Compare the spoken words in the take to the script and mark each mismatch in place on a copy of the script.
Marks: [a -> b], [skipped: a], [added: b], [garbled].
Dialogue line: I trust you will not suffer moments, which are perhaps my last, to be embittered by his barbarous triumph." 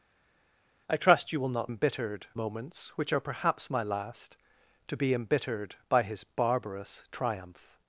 I trust you will not [suffer -> embittered] moments, which are perhaps my last, to be embittered by his barbarous triumph."